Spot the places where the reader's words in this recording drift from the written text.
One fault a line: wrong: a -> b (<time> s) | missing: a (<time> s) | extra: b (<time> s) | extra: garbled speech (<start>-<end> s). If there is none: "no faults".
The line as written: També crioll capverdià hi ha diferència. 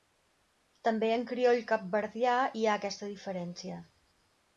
extra: en (1.2 s)
extra: aquesta (2.8 s)